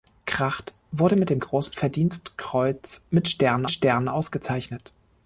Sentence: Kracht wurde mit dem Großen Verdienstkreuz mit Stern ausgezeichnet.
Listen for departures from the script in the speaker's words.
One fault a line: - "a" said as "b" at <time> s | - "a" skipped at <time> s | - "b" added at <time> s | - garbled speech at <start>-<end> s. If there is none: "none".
- "Stern" added at 3.7 s